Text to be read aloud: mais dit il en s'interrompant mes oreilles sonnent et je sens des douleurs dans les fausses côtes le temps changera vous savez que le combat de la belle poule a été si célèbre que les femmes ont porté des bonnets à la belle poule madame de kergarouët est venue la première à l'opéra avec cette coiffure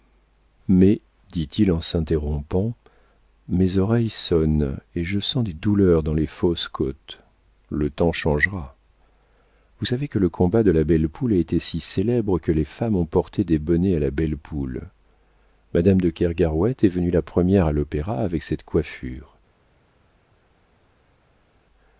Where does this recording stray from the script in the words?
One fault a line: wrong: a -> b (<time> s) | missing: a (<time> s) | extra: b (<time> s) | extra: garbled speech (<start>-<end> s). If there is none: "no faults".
no faults